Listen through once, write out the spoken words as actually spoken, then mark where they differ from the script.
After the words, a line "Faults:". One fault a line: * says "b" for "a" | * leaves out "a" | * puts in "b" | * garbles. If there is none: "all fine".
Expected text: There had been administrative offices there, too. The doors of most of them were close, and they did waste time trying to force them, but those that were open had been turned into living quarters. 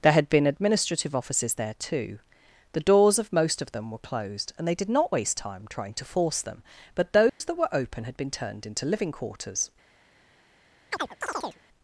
There had been administrative offices there, too. The doors of most of them were closed, and they did not waste time trying to force them, but those that were open had been turned into living quarters.
Faults:
* says "closed" for "close"
* puts in "not"